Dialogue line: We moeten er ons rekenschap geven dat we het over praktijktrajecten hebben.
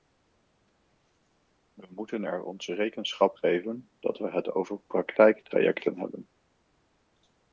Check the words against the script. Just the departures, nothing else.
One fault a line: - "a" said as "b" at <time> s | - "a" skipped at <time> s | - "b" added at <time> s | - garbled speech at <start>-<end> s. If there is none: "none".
none